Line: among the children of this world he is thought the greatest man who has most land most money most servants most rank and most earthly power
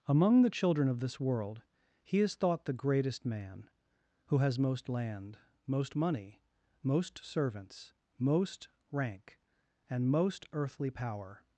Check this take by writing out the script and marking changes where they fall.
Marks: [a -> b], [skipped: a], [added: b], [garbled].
among the children of this world he is thought the greatest man who has most land most money most servants most rank and most earthly power